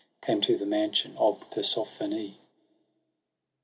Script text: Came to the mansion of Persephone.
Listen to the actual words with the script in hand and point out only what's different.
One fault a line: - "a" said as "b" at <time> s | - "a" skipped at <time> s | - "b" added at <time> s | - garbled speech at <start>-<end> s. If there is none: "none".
none